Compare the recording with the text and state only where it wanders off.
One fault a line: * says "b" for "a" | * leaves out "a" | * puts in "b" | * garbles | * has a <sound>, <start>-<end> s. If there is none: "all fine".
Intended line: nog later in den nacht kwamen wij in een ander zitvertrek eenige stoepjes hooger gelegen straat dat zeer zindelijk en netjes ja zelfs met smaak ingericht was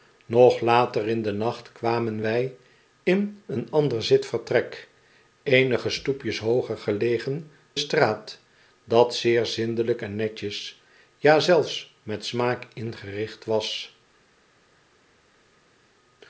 all fine